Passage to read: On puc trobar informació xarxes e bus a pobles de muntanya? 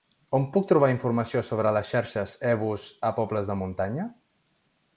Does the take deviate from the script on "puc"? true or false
false